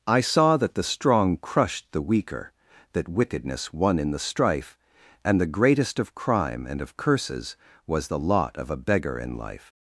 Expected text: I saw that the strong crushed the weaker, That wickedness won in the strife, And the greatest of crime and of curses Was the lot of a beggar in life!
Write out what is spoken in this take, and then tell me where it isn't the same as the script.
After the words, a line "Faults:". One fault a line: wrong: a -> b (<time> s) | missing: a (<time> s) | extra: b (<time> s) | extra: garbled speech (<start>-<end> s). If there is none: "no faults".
I saw that the strong crushed the weaker, That wickedness won in the strife, And the greatest of crime and of curses Was the lot of a beggar in life!
Faults:
no faults